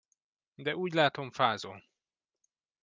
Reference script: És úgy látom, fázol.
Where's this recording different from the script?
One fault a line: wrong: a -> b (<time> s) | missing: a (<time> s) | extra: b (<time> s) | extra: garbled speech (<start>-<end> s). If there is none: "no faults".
wrong: És -> De (0.6 s)